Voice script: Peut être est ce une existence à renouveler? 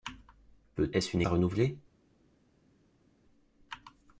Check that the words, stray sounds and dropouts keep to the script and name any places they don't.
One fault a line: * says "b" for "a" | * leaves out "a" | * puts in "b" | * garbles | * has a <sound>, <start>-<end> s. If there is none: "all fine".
* leaves out "être"
* leaves out "existence"